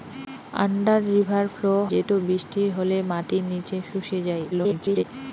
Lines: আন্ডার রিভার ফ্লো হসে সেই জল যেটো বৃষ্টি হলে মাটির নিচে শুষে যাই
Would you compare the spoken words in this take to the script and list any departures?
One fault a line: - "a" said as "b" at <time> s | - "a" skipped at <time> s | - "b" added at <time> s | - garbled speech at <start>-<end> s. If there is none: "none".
- "হসে সেই জল" skipped at 1.7 s
- garbled speech at 4.5-5.0 s